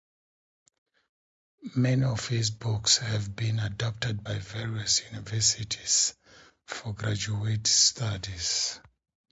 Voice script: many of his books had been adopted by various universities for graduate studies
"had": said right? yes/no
no